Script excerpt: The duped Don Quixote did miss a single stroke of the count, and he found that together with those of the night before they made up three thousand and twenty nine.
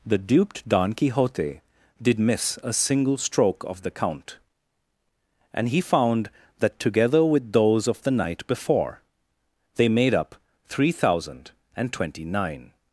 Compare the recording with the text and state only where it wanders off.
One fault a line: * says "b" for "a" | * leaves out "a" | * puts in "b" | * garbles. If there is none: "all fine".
all fine